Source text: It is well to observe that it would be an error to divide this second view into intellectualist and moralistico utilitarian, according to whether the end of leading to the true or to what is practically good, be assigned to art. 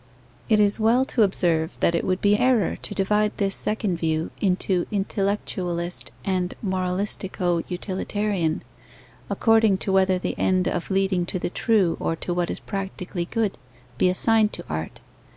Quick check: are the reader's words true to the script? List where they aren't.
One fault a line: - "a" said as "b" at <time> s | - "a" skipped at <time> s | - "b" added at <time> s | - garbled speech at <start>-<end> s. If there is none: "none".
- "an" skipped at 2.3 s